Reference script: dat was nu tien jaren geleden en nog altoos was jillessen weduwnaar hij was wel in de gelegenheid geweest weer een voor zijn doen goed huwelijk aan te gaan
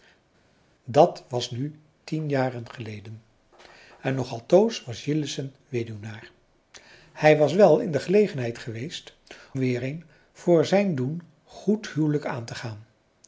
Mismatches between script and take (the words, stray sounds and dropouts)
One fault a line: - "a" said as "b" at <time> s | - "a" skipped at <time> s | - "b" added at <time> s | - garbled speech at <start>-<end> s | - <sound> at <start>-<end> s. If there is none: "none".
none